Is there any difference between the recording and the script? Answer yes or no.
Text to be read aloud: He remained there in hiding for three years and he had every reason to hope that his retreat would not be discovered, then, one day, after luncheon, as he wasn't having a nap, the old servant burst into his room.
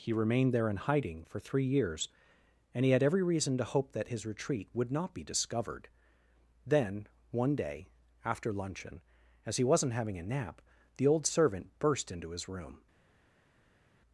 no